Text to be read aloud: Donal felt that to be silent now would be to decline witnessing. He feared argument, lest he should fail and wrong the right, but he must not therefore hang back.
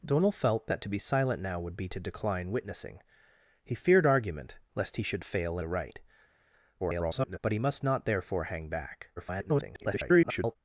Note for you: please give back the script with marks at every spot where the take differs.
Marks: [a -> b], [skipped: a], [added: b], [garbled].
Donal felt that to be silent now would be to decline witnessing. He feared argument, lest he should fail [skipped: and wrong] the right, [garbled] but he must not therefore hang back. [garbled]